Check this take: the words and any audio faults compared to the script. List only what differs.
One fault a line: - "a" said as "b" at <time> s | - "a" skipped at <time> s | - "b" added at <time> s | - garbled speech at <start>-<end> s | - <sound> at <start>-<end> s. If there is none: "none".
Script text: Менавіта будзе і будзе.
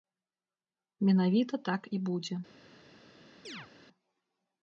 - "будзе" said as "так" at 1.7 s
- chirp at 3.4-3.7 s